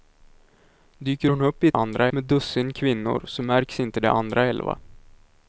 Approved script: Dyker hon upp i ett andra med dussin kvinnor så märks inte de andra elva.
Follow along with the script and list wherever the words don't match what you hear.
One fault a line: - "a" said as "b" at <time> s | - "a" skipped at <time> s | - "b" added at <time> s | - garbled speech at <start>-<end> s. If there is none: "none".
none